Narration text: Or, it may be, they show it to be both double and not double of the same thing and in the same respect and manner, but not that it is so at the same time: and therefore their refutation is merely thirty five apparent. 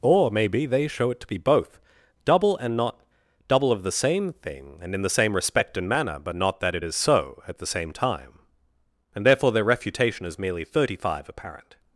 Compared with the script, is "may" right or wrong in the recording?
wrong